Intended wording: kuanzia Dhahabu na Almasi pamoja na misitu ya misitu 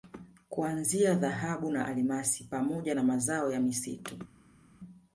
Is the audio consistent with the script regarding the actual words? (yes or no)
no